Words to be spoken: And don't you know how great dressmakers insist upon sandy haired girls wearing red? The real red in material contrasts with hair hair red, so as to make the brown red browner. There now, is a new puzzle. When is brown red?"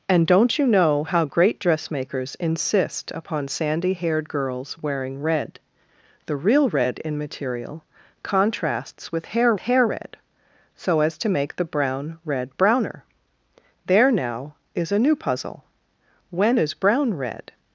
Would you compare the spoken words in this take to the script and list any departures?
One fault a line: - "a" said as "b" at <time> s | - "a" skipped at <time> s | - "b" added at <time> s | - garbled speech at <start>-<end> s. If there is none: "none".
none